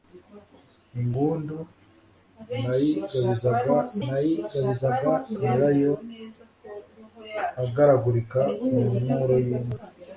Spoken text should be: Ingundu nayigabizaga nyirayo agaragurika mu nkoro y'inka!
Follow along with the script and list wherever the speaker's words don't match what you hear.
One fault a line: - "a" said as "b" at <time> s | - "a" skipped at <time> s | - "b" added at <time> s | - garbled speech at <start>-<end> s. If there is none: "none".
- "nayigabizaga" added at 4.1 s